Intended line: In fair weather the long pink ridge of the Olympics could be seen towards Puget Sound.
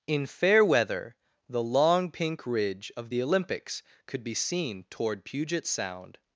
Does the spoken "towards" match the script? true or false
false